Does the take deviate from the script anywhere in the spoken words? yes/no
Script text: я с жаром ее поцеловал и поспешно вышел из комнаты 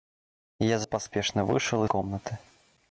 yes